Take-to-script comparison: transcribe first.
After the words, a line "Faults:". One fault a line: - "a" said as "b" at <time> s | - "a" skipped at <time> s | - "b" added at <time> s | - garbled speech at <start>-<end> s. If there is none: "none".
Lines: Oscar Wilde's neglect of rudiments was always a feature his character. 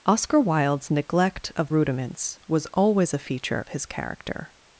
Oscar Wilde's neglect of rudiments was always a feature his character.
Faults:
none